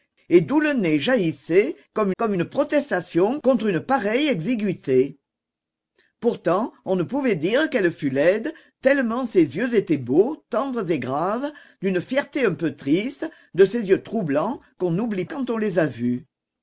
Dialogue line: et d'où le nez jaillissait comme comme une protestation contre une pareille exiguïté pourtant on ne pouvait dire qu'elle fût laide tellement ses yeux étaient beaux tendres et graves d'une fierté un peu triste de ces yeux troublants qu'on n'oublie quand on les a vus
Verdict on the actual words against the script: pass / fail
pass